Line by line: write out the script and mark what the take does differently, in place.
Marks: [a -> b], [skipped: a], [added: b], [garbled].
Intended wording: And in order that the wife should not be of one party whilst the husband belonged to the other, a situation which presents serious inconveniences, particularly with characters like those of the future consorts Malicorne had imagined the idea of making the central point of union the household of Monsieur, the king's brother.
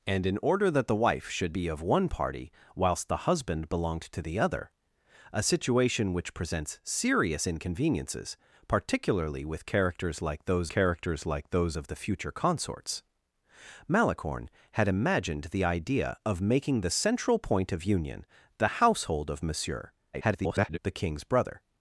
And in order that the wife should [skipped: not] be of one party whilst the husband belonged to the other, a situation which presents serious inconveniences, particularly with characters like those [added: characters like those] of the future consorts Malicorne had imagined the idea of making the central point of union the household of Monsieur, [garbled] the king's brother.